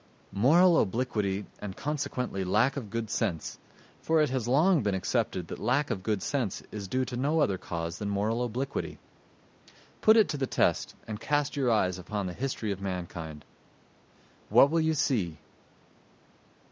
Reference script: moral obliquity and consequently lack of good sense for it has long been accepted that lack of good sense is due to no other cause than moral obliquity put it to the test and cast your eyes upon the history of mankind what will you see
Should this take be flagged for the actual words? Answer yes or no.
no